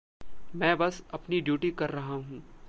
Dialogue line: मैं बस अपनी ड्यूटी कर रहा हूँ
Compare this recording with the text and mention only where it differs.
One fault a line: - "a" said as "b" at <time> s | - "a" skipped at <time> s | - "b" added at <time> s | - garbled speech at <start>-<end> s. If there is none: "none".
none